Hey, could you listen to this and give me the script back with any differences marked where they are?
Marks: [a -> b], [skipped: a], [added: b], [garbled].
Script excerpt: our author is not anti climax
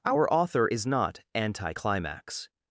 our author is not anti climax